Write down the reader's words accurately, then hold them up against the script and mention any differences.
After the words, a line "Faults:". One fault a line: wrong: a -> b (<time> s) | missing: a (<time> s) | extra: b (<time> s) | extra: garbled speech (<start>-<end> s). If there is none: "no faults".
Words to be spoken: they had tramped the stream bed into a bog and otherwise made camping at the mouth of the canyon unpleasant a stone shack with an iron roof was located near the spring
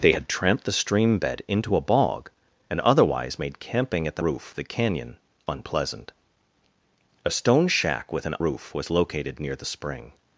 they had tramped the stream bed into a bog and otherwise made camping at the roof of the canyon unpleasant a stone shack with an roof was located near the spring
Faults:
wrong: mouth -> roof (4.2 s)
missing: iron (8.3 s)